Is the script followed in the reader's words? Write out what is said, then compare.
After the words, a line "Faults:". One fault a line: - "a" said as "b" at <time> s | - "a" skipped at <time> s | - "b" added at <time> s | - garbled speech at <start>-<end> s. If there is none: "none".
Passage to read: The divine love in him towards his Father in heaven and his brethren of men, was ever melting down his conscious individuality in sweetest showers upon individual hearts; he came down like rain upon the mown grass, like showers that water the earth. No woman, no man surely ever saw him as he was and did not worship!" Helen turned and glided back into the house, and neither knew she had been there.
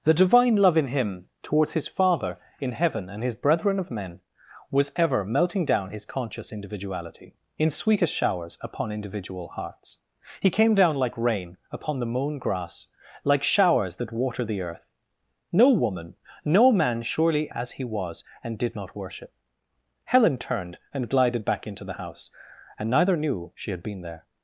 The divine love in him towards his Father in heaven and his brethren of men, was ever melting down his conscious individuality in sweetest showers upon individual hearts; he came down like rain upon the mown grass, like showers that water the earth. No woman, no man surely as he was and did not worship!" Helen turned and glided back into the house, and neither knew she had been there.
Faults:
- "ever saw him" skipped at 17.5 s